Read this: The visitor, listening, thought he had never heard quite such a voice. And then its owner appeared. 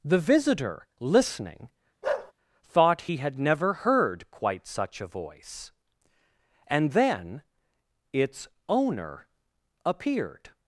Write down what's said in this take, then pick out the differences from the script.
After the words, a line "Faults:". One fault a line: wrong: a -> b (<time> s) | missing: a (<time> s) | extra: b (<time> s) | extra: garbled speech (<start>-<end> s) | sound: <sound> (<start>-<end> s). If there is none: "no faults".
The visitor, listening, thought he had never heard quite such a voice. And then its owner appeared.
Faults:
sound: bark (2.0-2.3 s)